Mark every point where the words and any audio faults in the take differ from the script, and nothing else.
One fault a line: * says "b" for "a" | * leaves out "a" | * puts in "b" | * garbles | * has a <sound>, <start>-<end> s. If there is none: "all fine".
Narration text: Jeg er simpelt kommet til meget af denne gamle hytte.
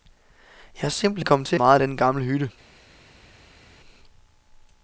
all fine